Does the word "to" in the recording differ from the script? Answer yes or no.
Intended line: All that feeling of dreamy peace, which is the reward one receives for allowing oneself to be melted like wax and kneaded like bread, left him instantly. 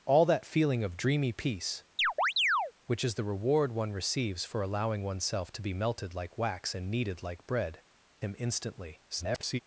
no